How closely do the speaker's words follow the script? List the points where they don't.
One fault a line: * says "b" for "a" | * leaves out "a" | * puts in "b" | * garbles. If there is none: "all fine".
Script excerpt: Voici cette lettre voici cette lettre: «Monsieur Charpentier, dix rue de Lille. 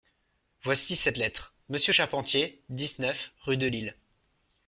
* leaves out "voici cette lettre"
* puts in "neuf"